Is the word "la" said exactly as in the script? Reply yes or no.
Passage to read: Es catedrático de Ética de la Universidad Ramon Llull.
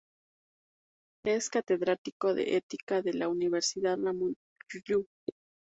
yes